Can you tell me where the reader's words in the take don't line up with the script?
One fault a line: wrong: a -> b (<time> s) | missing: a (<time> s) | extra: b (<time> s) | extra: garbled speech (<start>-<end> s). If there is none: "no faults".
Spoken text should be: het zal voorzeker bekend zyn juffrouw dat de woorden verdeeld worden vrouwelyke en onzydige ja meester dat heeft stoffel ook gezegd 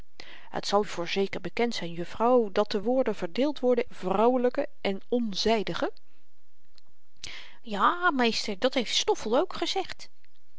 no faults